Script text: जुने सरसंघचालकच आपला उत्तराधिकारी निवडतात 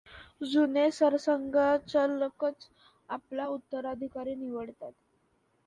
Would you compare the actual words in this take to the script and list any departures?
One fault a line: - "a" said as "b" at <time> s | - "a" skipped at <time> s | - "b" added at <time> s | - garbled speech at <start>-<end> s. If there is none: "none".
none